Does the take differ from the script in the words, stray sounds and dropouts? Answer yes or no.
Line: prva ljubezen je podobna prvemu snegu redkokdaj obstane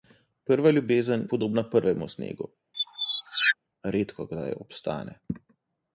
yes